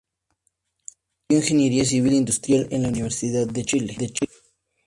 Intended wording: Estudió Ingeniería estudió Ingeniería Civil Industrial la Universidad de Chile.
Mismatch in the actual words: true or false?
true